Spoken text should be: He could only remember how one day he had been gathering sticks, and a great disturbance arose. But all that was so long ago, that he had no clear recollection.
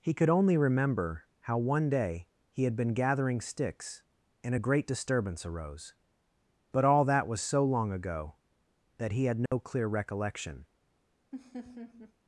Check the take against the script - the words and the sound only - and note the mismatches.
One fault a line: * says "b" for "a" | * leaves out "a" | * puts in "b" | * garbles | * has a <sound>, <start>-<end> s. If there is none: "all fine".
* has a dropout, 9.5-9.5 s
* has a laugh, 11.3-12.1 s